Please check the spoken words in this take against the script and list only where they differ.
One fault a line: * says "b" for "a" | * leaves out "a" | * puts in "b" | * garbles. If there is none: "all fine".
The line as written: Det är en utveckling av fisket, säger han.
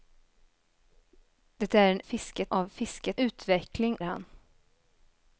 * says "fisket" for "utveckling"
* says "utveckling" for "säger"